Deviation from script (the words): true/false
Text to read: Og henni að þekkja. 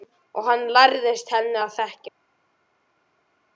true